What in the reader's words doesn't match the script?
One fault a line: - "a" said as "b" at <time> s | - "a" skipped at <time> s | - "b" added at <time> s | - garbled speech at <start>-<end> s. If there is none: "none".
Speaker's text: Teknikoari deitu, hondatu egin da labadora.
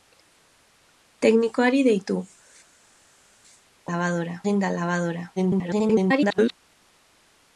- "hondatu" said as "labadora" at 3.9 s
- garbled speech at 5.4-6.5 s